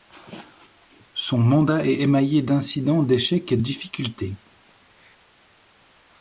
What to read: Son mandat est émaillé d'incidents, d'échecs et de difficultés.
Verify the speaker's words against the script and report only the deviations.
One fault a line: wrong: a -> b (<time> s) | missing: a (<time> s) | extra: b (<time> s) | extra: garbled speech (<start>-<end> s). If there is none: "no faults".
missing: de (3.6 s)